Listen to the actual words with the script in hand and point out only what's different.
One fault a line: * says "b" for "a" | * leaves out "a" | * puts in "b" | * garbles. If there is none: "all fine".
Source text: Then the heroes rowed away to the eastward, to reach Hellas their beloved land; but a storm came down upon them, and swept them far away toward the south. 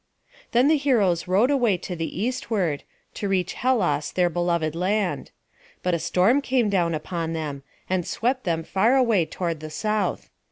all fine